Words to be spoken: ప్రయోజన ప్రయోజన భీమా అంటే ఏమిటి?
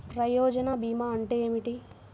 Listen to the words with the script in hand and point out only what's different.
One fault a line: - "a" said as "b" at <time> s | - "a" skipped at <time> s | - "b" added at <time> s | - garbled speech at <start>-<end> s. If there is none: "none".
- "ప్రయోజన" skipped at 0.7 s